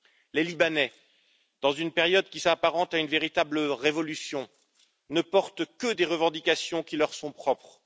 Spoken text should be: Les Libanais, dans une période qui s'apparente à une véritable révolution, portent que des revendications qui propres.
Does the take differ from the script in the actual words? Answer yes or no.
yes